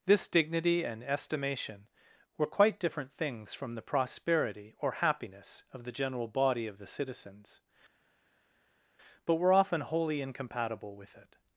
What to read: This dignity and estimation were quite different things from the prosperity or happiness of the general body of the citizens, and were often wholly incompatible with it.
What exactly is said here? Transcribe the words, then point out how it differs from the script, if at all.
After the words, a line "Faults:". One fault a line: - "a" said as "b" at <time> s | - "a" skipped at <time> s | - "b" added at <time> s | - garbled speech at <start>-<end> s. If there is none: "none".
This dignity and estimation were quite different things from the prosperity or happiness of the general body of the citizens, but were often wholly incompatible with it.
Faults:
- "and" said as "but" at 9.2 s